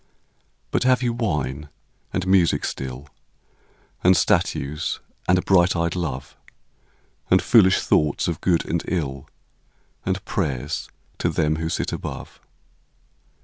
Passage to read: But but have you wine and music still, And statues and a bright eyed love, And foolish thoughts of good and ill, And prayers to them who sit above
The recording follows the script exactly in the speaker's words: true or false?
false